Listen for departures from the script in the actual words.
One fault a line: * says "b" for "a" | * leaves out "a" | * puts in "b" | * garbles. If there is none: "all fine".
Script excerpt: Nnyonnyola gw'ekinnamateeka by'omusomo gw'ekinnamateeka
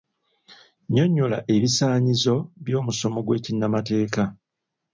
* says "ebisaanyizo" for "gw'ekinnamateeka"